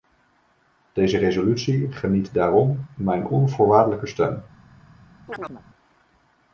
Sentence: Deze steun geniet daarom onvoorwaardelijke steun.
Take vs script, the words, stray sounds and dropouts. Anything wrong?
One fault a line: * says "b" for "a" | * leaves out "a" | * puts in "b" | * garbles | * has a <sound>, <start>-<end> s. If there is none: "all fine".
* says "resolutie" for "steun"
* puts in "mijn"
* has a chirp, 5.3-5.6 s